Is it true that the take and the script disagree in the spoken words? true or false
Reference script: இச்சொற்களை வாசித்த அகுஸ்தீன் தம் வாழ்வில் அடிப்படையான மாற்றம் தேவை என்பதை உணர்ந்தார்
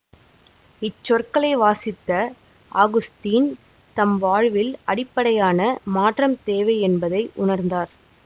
false